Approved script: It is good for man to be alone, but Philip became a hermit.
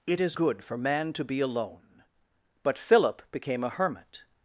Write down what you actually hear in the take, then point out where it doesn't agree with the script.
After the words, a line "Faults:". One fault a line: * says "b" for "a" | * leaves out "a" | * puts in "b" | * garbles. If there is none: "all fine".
It is good for man to be alone, but Philip became a hermit.
Faults:
all fine